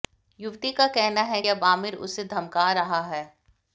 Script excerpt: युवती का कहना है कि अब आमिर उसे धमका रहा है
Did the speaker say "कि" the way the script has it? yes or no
no